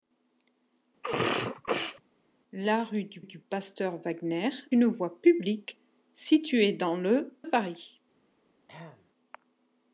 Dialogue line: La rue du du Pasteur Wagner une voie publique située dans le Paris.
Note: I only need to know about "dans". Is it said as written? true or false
true